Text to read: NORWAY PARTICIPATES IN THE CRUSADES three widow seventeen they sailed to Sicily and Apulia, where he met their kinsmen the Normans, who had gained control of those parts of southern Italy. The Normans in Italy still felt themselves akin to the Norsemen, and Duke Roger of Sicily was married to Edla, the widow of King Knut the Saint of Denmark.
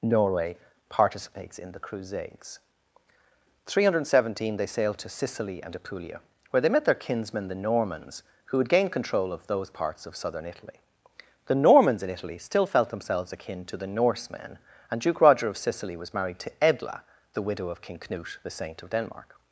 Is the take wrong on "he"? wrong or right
wrong